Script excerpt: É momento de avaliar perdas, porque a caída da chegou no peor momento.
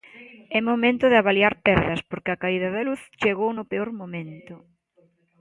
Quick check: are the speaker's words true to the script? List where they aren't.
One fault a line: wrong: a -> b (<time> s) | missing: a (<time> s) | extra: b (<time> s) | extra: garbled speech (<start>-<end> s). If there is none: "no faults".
extra: luz (2.9 s)